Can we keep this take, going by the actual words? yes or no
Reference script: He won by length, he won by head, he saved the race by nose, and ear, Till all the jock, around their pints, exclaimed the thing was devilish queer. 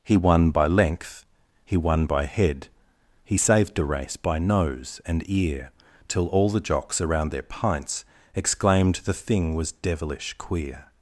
no